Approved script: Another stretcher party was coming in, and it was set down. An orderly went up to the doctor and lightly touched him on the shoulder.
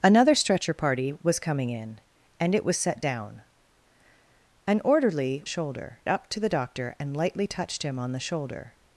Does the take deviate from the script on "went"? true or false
true